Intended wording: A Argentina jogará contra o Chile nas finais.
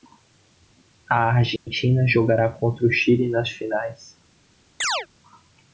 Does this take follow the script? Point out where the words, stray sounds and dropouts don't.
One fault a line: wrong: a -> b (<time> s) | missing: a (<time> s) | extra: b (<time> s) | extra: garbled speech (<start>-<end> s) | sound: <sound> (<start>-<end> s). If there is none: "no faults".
sound: dropout (1.6-1.7 s)
sound: chirp (4.8-5.1 s)